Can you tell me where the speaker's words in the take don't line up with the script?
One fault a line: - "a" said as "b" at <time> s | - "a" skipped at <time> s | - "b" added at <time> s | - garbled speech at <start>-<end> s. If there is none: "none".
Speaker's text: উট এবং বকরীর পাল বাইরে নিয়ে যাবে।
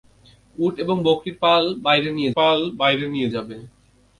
- "পাল বাইরে নিয়ে" added at 2.4 s